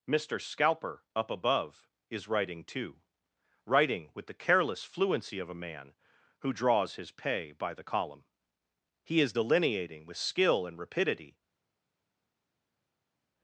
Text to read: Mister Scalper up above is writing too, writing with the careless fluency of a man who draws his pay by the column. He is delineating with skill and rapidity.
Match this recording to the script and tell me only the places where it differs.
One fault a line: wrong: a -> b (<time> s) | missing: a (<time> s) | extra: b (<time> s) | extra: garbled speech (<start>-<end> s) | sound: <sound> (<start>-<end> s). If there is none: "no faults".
no faults